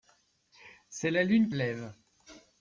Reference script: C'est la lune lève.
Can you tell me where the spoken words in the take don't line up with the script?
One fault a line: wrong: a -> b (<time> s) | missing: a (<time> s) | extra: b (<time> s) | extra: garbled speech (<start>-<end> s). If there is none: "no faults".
no faults